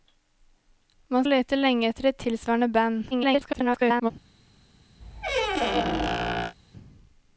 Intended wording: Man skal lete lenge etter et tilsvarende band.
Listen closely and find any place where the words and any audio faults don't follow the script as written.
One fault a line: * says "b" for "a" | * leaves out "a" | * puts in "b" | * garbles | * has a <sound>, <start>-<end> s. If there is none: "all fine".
* leaves out "skal"
* garbles
* has a squeak, 5.0-6.5 s